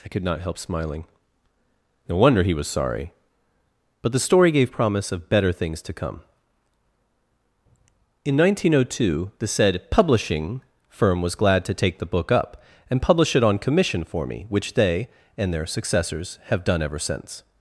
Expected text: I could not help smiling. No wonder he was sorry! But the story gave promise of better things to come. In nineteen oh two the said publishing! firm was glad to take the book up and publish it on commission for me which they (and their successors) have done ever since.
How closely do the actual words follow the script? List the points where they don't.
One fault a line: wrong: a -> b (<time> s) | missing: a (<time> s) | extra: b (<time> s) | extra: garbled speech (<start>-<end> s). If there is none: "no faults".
no faults